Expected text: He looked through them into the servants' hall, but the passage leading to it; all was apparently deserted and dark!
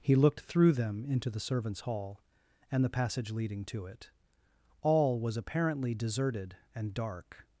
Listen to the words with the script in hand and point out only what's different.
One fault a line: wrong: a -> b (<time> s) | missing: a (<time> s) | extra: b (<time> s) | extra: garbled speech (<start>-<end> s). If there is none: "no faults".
wrong: but -> and (2.7 s)